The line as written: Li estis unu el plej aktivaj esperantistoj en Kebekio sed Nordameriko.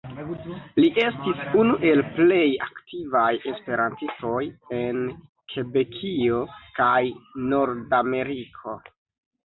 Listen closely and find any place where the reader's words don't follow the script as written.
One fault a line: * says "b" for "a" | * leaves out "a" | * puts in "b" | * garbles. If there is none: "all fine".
* says "kaj" for "sed"